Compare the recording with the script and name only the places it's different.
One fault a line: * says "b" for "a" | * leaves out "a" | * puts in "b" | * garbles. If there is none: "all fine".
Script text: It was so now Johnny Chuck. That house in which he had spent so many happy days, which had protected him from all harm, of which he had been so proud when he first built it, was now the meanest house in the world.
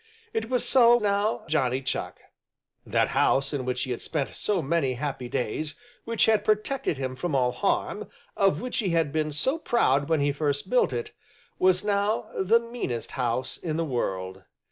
all fine